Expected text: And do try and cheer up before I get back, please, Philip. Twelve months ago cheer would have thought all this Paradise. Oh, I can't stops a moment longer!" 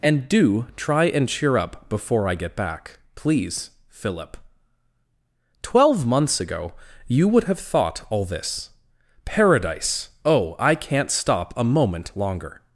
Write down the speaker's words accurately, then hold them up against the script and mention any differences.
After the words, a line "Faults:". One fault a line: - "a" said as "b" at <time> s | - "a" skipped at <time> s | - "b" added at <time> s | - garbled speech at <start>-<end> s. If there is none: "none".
And do try and cheer up before I get back, please, Philip. Twelve months ago you would have thought all this Paradise. Oh, I can't stop a moment longer!"
Faults:
- "cheer" said as "you" at 7.1 s
- "stops" said as "stop" at 11.1 s